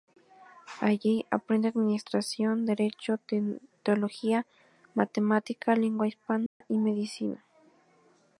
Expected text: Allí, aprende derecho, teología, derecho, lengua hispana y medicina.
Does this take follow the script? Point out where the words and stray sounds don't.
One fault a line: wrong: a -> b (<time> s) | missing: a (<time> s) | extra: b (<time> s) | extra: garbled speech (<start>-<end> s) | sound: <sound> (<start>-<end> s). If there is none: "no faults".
extra: administración (1.7 s)
wrong: derecho -> matemática (4.9 s)
sound: dropout (6.5-6.6 s)